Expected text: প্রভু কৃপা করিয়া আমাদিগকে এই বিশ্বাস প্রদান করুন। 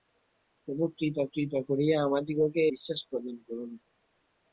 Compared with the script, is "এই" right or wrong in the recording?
wrong